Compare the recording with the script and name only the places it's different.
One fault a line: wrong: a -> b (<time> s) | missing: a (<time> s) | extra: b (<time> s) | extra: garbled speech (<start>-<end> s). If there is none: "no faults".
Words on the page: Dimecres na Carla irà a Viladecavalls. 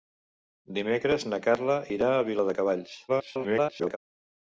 extra: garbled speech (3.1-4.0 s)